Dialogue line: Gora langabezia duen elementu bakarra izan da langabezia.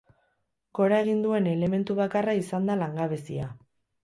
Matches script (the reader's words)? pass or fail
fail